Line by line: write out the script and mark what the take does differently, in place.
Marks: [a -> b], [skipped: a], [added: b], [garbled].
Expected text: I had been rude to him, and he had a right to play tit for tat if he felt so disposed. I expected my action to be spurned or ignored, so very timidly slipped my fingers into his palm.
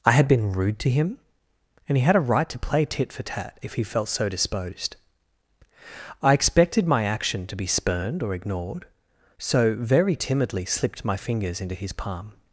I had been rude to him, and he had a right to play tit for tat if he felt so disposed. I expected my action to be spurned or ignored, so very timidly slipped my fingers into his palm.